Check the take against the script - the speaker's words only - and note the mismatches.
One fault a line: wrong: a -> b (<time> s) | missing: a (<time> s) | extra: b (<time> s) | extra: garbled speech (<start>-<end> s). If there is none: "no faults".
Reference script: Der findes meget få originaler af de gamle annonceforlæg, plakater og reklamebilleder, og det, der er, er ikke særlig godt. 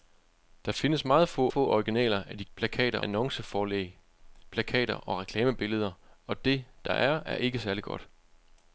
extra: få (1.5 s)
wrong: gamle -> plakater (2.5 s)